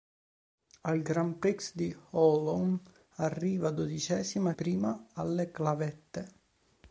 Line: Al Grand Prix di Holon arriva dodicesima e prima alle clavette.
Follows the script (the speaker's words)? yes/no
yes